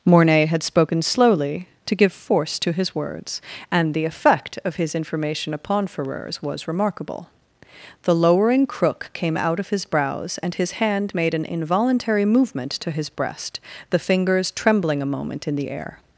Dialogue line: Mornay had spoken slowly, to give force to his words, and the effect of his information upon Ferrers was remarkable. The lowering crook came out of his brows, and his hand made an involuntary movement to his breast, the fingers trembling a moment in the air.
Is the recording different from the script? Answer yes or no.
no